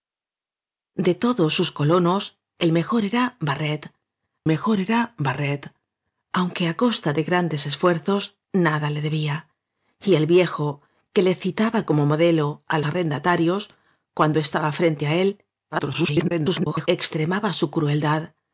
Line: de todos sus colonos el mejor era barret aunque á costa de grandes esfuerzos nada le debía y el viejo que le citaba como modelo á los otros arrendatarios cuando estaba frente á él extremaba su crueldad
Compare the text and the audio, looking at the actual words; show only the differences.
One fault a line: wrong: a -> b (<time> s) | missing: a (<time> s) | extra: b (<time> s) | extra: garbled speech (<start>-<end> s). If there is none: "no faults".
extra: mejor era barret (4.5 s)
missing: los otros (12.8 s)
extra: garbled speech (15.7-16.9 s)